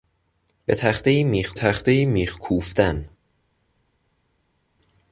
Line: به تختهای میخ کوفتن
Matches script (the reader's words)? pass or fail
fail